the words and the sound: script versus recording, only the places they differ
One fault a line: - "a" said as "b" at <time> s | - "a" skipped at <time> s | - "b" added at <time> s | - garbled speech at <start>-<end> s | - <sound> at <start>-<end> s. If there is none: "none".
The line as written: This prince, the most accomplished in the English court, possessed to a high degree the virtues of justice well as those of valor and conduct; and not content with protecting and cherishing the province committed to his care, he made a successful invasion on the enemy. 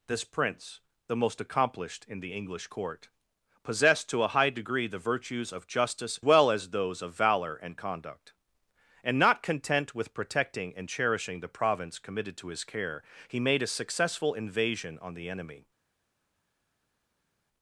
none